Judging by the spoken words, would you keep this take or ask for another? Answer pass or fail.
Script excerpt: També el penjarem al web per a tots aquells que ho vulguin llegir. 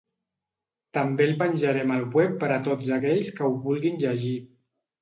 pass